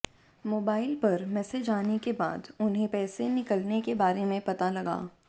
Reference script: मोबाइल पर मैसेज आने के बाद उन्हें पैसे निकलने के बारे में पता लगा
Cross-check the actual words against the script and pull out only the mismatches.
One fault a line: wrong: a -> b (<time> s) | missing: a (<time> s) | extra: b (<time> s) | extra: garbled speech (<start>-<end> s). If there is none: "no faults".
no faults